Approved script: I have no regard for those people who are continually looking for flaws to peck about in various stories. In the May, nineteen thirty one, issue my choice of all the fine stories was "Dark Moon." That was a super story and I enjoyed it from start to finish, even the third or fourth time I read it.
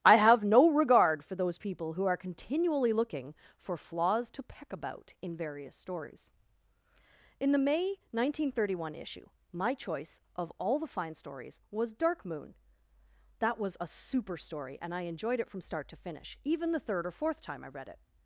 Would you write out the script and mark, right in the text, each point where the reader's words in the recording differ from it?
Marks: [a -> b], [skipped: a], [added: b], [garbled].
I have no regard for those people who are continually looking for flaws to peck about in various stories. In the May, nineteen thirty one, issue my choice of all the fine stories was "Dark Moon." That was a super story and I enjoyed it from start to finish, even the third or fourth time I read it.